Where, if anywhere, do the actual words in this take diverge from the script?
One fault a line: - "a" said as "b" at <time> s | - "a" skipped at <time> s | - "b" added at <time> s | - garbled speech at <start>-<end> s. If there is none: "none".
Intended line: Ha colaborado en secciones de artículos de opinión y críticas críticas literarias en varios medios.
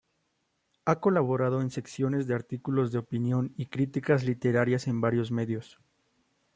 - "críticas" skipped at 4.2 s